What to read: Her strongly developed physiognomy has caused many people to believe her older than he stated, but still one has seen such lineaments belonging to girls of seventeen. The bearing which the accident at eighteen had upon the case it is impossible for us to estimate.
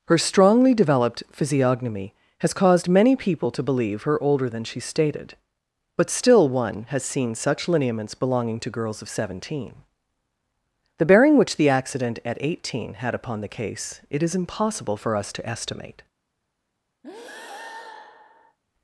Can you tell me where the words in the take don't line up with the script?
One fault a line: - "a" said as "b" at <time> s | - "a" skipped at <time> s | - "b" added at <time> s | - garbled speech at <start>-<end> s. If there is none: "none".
- "he" said as "she" at 4.6 s